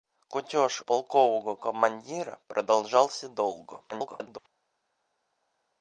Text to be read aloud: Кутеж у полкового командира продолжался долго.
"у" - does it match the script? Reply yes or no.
no